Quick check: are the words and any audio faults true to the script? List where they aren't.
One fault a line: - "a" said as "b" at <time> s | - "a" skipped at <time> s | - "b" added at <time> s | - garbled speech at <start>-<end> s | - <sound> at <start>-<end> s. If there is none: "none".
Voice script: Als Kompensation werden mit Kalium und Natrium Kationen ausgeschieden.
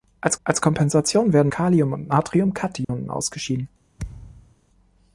- "als" added at 0.4 s
- "mit" skipped at 1.5 s
- dropout at 2.8-2.9 s
- thud at 4.0-4.6 s